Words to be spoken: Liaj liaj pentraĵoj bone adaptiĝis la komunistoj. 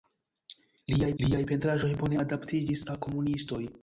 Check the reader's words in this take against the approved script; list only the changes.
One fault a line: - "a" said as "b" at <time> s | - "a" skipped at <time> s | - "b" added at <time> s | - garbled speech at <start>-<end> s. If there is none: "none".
none